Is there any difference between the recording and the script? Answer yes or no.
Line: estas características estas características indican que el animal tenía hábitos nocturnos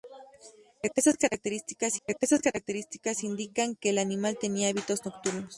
no